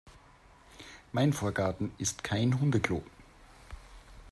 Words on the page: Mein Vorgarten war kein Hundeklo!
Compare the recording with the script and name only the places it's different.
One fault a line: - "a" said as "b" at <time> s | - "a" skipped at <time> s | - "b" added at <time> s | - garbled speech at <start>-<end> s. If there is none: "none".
- "war" said as "ist" at 2.0 s